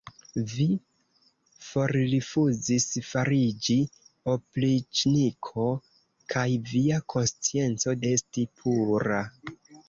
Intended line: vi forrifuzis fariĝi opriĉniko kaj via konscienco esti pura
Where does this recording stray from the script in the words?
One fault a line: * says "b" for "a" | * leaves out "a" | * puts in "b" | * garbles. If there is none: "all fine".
all fine